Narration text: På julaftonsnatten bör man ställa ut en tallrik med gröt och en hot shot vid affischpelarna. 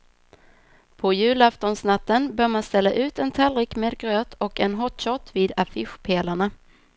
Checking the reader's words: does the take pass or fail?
pass